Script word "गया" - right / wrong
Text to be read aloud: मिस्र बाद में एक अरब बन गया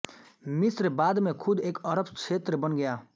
right